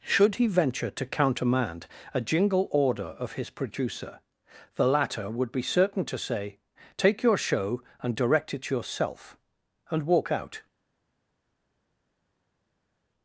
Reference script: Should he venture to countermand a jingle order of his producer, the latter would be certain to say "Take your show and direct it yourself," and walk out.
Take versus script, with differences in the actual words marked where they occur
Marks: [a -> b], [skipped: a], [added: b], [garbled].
Should he venture to countermand a jingle order of his producer, the latter would be certain to say "Take your show and direct it yourself," and walk out.